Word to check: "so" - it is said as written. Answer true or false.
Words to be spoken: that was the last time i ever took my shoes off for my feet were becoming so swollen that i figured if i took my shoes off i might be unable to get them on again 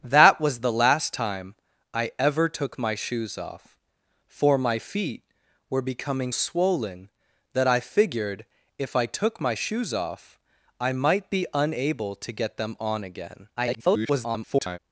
false